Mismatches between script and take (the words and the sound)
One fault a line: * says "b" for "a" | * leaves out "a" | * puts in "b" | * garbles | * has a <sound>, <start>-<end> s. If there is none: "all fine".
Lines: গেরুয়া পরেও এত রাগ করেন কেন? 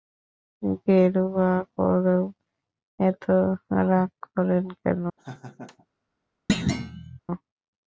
* has a laugh, 5.2-5.9 s
* has a thud, 6.5-7.2 s